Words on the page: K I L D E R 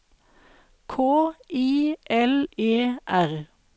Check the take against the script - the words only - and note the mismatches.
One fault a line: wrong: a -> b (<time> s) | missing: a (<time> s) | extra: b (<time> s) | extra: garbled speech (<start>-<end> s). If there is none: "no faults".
missing: D (2.5 s)